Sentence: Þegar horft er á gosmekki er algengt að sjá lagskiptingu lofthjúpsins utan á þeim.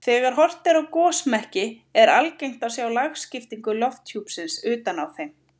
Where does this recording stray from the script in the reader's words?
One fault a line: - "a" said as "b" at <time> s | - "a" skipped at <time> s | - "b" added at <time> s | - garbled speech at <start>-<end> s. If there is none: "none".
none